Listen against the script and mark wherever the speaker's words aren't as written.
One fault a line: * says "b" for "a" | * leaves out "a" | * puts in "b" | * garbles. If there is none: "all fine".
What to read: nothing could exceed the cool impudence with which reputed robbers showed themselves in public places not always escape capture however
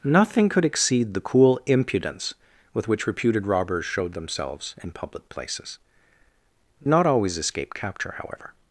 all fine